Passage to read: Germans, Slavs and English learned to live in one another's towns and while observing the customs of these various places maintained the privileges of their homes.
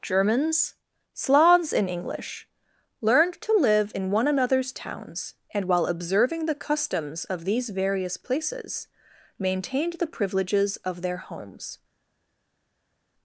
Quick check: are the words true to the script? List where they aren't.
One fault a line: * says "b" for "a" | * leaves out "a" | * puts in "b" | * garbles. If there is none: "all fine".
* says "in" for "and"